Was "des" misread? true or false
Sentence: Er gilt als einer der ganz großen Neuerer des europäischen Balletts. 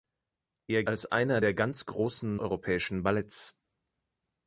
true